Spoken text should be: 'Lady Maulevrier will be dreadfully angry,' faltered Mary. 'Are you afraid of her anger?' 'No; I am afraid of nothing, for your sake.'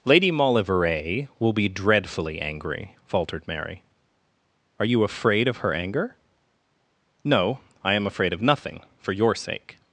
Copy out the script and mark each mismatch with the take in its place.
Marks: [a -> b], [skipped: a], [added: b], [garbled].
'Lady Maulevrier will be dreadfully angry,' faltered Mary. 'Are you afraid of her anger?' 'No; I am afraid of nothing, for your sake.'